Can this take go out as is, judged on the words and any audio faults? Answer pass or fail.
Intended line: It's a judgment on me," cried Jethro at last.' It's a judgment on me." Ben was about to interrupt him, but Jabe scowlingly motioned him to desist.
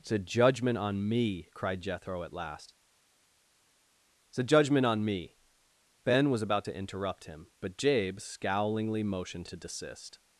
fail